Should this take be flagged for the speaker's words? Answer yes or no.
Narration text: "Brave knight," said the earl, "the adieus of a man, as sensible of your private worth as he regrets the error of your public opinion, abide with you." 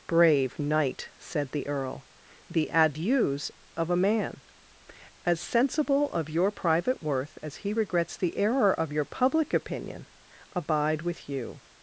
no